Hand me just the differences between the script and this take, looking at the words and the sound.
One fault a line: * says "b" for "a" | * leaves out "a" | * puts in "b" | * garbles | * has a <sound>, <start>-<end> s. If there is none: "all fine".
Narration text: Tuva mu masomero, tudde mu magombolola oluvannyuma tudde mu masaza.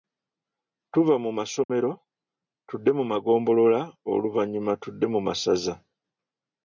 * has a dropout, 1.6-1.7 s